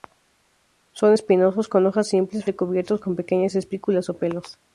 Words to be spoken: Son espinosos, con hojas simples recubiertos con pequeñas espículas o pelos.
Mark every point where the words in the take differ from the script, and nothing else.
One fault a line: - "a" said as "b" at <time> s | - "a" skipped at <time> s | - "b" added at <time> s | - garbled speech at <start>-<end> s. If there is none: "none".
none